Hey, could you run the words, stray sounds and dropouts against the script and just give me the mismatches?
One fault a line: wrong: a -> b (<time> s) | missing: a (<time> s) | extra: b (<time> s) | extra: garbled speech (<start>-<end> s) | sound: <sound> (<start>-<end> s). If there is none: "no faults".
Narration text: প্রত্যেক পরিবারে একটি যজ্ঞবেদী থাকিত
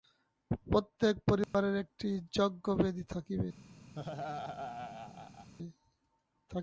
sound: dropout (1.4-1.5 s)
sound: laugh (4.0-5.5 s)